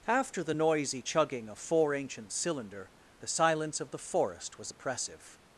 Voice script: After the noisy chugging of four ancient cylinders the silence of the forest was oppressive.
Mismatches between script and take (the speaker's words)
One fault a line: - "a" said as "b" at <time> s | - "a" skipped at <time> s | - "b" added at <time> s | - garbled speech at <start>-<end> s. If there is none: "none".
- "cylinders" said as "cylinder" at 2.3 s